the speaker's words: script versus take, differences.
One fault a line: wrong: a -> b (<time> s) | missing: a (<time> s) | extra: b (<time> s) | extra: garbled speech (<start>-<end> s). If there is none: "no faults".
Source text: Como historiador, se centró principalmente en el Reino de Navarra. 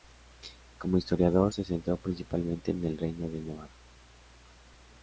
no faults